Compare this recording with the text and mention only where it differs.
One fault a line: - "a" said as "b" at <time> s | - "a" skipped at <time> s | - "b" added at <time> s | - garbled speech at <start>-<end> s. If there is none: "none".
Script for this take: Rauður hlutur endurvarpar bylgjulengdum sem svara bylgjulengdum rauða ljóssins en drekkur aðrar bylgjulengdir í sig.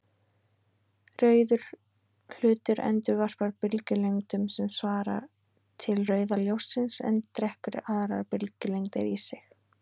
- "bylgjulengdum" said as "til" at 5.8 s